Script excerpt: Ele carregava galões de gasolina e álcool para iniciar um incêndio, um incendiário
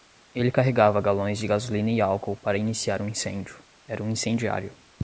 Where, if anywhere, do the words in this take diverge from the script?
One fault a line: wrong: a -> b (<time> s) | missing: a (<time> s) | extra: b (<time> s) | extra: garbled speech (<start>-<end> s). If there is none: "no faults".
extra: era (3.9 s)